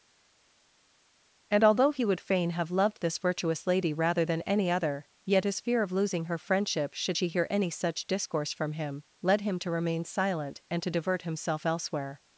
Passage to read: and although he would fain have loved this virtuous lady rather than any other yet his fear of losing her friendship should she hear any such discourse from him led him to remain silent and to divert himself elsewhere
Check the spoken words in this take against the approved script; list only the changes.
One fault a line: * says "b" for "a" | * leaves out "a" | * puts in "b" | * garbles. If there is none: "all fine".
all fine